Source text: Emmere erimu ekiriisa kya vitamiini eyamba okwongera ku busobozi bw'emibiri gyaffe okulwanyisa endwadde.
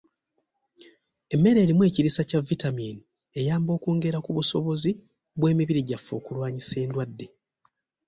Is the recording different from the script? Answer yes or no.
no